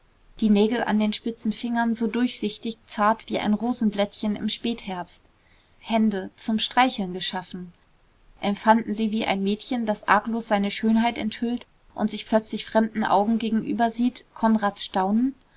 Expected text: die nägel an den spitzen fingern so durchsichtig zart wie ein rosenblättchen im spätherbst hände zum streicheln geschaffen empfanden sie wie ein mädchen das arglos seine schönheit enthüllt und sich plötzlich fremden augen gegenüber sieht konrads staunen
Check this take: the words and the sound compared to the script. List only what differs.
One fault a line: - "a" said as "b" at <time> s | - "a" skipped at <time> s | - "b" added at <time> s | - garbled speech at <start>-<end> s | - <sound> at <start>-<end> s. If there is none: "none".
none